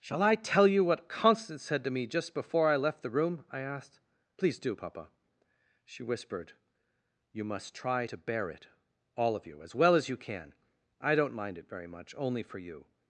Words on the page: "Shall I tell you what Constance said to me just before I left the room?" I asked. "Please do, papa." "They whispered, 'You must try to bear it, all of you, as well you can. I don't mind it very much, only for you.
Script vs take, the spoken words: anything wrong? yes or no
yes